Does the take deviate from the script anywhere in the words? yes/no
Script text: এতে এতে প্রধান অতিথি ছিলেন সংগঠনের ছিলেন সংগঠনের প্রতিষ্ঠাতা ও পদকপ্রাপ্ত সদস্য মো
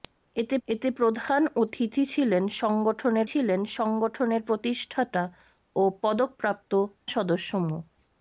no